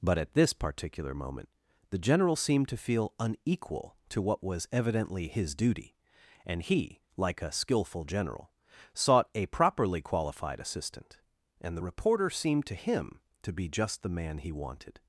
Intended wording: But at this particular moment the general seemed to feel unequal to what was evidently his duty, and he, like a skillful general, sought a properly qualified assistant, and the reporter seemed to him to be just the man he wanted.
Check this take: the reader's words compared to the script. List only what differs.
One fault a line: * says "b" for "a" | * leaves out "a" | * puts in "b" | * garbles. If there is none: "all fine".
all fine